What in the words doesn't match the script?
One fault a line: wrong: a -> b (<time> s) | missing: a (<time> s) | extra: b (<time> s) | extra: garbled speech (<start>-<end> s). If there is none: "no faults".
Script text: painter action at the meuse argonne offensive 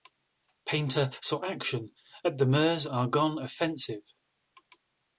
extra: saw (1.2 s)